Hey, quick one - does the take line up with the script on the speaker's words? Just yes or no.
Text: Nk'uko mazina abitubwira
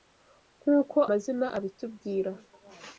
yes